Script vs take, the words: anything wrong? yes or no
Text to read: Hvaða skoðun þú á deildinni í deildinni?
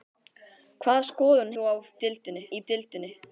no